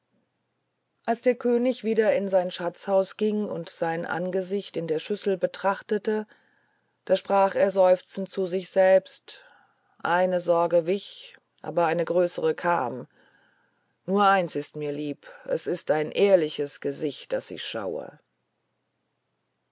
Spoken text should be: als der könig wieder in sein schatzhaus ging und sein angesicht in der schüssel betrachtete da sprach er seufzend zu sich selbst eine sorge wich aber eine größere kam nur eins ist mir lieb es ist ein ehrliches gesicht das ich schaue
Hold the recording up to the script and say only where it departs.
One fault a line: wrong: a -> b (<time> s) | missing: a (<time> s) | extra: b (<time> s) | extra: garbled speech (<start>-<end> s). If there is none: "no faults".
no faults